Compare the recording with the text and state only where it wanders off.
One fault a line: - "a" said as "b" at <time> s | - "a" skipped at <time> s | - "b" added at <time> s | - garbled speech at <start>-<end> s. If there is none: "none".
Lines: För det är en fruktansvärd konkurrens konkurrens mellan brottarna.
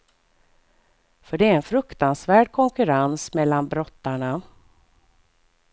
- "konkurrens" skipped at 3.3 s